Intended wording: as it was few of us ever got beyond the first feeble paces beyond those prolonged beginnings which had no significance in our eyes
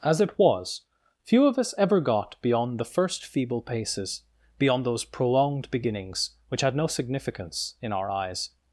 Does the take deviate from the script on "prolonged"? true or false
false